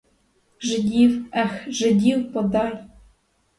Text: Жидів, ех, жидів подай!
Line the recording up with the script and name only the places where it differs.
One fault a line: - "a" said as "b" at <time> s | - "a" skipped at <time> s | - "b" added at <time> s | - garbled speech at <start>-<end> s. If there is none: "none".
none